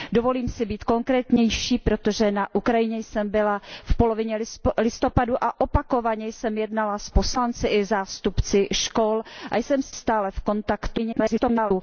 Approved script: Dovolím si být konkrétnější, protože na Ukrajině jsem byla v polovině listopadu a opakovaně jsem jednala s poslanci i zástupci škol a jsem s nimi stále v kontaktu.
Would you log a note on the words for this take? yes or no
yes